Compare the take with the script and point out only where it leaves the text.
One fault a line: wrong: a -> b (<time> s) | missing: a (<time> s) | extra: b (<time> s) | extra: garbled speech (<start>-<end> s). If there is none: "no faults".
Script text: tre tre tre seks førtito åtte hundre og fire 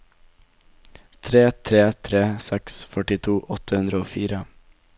no faults